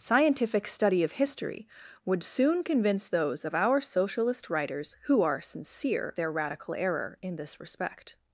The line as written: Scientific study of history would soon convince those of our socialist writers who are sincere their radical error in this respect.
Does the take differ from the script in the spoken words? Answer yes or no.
no